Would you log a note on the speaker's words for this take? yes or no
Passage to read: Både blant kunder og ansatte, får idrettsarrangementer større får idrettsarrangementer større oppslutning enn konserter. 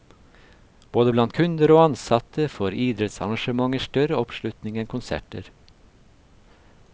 yes